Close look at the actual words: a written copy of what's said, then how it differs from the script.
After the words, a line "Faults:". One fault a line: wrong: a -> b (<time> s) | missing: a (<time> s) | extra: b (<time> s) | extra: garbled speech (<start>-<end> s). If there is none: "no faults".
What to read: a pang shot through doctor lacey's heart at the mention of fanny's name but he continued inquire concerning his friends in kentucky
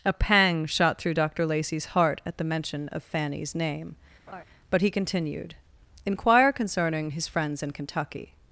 a pang shot through doctor lacey's heart at the mention of fanny's name but he continued inquire concerning his friends in kentucky
Faults:
no faults